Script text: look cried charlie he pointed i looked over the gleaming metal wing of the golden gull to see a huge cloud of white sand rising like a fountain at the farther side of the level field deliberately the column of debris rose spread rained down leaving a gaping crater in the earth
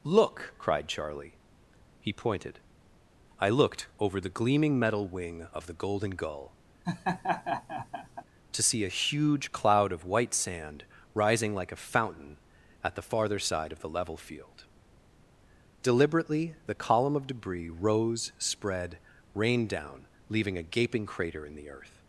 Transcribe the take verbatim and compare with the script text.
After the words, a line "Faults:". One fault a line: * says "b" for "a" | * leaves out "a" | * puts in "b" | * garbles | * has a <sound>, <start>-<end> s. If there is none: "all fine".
look cried charlie he pointed i looked over the gleaming metal wing of the golden gull to see a huge cloud of white sand rising like a fountain at the farther side of the level field deliberately the column of debris rose spread rained down leaving a gaping crater in the earth
Faults:
* has a laugh, 6.8-8.2 s